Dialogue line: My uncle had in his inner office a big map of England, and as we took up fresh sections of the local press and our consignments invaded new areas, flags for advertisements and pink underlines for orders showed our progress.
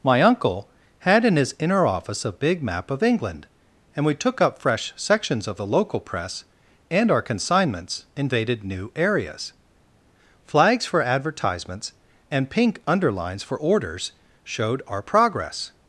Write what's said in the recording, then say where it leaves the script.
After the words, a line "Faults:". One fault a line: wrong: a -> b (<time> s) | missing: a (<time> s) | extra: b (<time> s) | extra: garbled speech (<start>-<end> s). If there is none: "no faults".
My uncle had in his inner office a big map of England, and we took up fresh sections of the local press and our consignments invaded new areas, flags for advertisements and pink underlines for orders showed our progress.
Faults:
missing: as (4.0 s)